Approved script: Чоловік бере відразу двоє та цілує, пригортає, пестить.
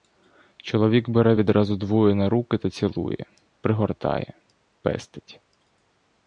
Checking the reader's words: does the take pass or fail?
fail